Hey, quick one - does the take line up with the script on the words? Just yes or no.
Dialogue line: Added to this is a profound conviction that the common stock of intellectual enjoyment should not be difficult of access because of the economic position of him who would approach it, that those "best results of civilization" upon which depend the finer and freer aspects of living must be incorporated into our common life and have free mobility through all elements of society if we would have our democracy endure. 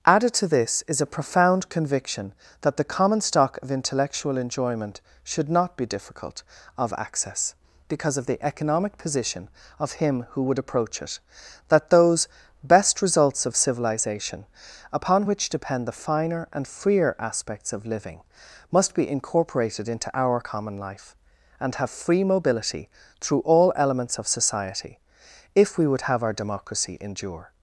yes